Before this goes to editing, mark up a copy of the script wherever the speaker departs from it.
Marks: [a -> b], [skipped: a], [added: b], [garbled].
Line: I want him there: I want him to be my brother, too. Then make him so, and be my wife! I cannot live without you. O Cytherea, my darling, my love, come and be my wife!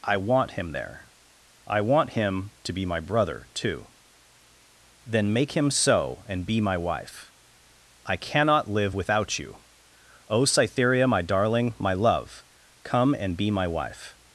I want him there: I want him to be my brother, too. Then make him so, and be my wife! I cannot live without you. O Cytherea, my darling, my love, come and be my wife!